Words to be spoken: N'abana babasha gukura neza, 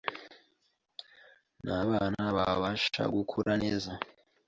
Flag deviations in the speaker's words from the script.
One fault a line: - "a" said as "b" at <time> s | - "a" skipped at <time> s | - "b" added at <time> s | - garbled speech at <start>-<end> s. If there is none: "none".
none